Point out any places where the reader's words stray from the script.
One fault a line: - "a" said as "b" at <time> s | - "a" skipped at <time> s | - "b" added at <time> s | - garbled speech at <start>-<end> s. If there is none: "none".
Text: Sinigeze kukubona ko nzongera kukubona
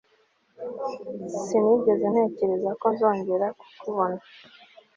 - "kukubona" said as "ntekereza" at 2.1 s